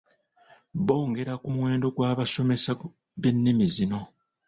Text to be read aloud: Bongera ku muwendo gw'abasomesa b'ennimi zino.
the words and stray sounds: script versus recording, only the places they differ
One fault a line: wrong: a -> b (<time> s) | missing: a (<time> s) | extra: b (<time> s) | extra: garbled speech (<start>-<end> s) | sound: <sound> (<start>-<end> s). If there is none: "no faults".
no faults